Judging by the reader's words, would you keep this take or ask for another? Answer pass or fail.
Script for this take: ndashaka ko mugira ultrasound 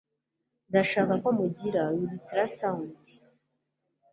pass